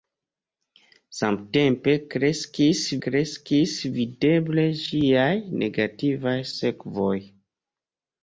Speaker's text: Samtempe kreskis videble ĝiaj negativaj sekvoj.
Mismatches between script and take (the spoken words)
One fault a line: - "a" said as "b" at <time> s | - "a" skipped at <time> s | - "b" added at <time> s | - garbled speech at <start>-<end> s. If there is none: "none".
- "kreskis" added at 3.1 s